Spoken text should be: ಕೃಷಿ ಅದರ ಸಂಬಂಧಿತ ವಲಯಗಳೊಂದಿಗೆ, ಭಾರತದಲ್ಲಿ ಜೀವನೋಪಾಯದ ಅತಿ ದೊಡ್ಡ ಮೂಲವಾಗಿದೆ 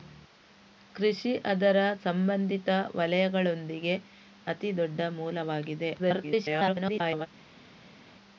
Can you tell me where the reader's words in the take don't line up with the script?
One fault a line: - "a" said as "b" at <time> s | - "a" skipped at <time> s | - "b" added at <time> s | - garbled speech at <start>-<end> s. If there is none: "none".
- "ಭಾರತದಲ್ಲಿ ಜೀವನೋಪಾಯದ" skipped at 4.0 s
- garbled speech at 6.0-7.3 s